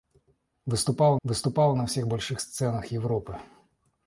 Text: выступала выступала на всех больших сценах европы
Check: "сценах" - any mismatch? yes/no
no